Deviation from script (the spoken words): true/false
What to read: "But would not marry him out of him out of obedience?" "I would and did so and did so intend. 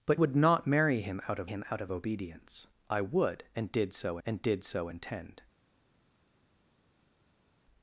false